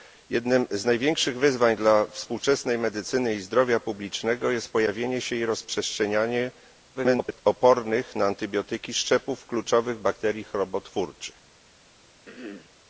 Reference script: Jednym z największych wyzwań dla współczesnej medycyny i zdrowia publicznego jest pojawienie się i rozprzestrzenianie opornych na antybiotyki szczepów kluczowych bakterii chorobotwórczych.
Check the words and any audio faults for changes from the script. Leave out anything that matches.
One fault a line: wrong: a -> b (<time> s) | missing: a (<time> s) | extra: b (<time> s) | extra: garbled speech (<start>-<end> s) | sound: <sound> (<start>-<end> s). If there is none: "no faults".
extra: garbled speech (6.9-7.4 s)
sound: throat clearing (12.3-12.7 s)